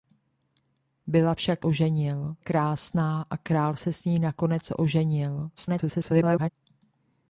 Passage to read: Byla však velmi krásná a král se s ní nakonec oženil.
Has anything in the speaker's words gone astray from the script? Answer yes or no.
yes